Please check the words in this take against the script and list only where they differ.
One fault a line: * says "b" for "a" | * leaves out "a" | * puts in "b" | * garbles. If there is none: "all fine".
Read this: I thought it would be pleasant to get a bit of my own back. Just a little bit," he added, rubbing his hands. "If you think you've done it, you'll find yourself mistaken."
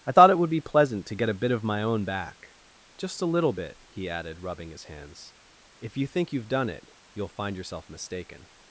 all fine